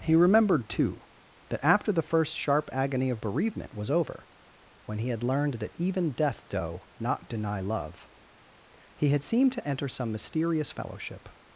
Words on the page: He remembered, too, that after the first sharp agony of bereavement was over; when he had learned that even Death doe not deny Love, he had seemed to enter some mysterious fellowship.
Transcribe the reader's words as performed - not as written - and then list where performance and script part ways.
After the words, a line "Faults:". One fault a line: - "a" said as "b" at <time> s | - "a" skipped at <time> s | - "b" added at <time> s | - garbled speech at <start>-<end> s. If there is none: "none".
He remembered, too, that after the first sharp agony of bereavement was over; when he had learned that even Death doe not deny Love, he had seemed to enter some mysterious fellowship.
Faults:
none